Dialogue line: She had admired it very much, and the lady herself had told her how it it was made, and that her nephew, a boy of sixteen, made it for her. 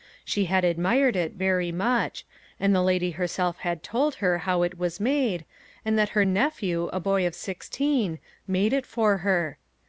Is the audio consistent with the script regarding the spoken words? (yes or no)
no